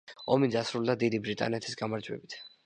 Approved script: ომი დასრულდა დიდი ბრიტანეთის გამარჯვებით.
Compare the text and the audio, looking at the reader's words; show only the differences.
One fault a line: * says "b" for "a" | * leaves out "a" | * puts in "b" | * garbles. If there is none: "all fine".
all fine